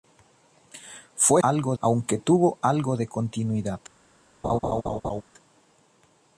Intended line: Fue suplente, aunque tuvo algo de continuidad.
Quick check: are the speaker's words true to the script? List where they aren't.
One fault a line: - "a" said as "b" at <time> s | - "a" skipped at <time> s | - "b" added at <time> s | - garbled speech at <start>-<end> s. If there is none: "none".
- "suplente" said as "algo" at 1.4 s